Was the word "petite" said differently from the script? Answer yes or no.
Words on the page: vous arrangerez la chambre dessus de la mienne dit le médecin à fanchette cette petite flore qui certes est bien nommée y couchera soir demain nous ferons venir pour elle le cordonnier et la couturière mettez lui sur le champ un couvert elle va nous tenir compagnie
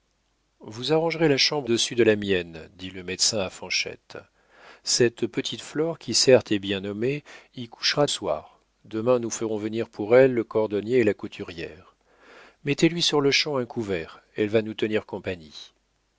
no